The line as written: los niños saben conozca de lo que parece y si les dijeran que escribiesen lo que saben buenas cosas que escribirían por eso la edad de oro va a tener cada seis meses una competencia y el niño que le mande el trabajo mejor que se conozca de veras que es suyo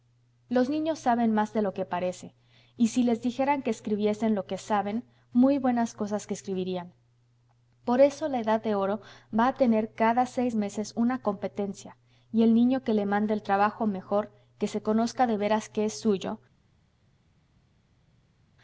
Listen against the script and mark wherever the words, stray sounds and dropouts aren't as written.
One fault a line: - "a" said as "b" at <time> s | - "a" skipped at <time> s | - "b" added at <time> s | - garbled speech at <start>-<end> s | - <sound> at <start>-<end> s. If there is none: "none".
- "conozca" said as "más" at 1.3 s
- "muy" added at 5.3 s